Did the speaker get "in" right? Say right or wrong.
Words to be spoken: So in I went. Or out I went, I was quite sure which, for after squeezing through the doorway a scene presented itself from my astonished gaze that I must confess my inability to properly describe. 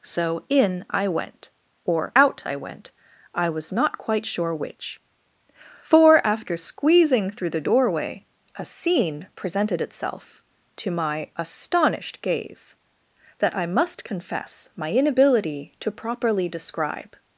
right